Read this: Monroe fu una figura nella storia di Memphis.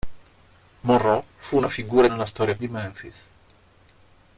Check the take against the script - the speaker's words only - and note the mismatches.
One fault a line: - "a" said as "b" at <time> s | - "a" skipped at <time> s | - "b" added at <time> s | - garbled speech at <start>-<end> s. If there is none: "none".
none